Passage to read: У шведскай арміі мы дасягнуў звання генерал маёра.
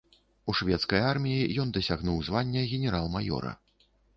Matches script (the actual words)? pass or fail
fail